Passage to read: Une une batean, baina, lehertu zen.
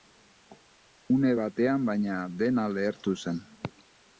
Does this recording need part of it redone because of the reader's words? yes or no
yes